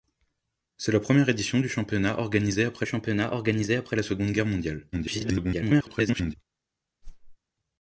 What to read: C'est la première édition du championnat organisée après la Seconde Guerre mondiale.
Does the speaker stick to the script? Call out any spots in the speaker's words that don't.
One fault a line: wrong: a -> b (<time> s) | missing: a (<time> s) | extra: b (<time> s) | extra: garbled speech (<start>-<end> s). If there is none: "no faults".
extra: championnat organisée après (2.9 s)
extra: garbled speech (4.9-6.3 s)